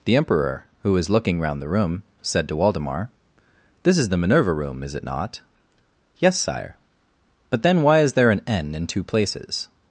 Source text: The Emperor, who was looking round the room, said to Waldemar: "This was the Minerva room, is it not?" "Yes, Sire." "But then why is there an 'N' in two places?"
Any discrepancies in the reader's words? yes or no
yes